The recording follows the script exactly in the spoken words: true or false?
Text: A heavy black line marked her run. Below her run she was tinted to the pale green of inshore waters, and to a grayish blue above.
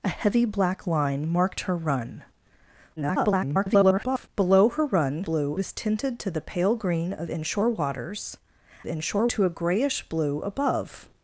false